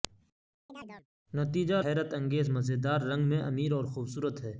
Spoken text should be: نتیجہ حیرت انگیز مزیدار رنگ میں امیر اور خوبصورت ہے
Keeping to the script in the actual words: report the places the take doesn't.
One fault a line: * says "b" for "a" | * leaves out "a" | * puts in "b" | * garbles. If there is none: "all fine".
all fine